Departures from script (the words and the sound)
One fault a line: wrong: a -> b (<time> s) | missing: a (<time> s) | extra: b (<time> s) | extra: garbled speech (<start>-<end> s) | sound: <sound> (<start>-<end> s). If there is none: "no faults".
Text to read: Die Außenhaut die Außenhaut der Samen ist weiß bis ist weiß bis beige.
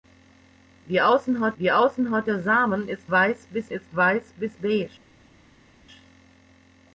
no faults